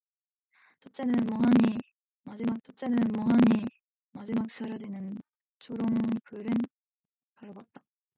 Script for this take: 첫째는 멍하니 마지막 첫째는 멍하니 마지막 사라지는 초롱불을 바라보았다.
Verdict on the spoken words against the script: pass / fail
pass